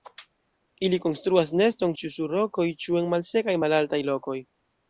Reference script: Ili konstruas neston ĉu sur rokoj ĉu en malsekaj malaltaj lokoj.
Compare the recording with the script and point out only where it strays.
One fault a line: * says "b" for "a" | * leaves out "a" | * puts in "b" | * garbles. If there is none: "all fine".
all fine